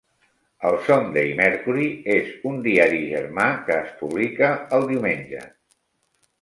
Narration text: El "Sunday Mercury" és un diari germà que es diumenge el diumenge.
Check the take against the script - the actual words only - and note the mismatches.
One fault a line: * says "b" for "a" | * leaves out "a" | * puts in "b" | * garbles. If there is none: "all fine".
* says "publica" for "diumenge"